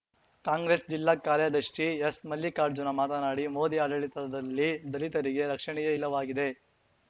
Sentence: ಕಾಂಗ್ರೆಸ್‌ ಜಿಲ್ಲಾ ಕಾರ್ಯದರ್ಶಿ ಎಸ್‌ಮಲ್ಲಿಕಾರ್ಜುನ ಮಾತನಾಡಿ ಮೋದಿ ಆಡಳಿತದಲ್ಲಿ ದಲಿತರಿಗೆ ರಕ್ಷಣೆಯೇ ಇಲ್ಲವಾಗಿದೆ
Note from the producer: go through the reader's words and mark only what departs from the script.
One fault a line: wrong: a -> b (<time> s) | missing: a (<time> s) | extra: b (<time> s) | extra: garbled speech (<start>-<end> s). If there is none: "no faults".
no faults